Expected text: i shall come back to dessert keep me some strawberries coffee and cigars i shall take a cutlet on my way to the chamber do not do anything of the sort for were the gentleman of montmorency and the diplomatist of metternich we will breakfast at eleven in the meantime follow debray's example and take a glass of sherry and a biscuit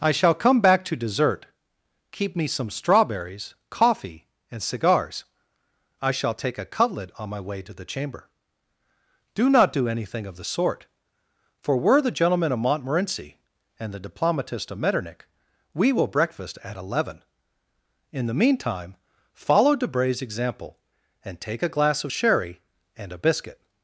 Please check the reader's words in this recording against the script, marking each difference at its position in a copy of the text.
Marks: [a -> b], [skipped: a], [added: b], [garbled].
i shall come back to dessert keep me some strawberries coffee and cigars i shall take a cutlet on my way to the chamber do not do anything of the sort for were the gentleman of montmorency and the diplomatist of metternich we will breakfast at eleven in the meantime follow debray's example and take a glass of sherry and a biscuit